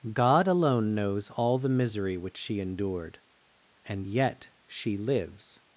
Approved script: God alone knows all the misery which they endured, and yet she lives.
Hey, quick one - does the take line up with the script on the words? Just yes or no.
no